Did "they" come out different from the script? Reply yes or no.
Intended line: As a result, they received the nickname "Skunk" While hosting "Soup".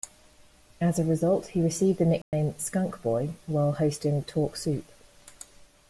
yes